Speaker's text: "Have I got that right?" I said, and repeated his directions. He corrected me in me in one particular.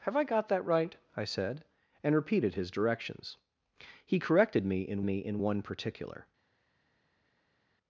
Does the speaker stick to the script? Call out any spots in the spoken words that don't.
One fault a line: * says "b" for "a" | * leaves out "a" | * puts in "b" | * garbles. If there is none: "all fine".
all fine